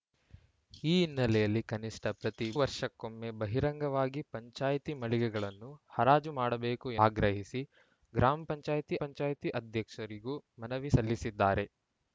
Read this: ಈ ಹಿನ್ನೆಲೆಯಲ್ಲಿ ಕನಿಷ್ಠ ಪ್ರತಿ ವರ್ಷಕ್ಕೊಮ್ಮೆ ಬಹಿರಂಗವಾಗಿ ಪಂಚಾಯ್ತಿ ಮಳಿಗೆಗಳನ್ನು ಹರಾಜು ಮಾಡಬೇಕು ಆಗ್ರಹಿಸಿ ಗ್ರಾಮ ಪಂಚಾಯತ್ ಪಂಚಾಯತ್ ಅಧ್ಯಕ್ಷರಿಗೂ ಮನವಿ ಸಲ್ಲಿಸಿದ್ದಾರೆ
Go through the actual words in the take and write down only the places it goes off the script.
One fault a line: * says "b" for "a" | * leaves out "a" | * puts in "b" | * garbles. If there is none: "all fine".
all fine